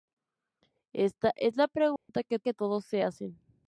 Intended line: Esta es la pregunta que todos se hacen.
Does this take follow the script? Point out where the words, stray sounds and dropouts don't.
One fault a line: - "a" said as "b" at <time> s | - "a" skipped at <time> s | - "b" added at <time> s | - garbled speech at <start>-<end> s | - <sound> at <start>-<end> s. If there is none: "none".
- dropout at 2.0-2.1 s
- "que" added at 2.4 s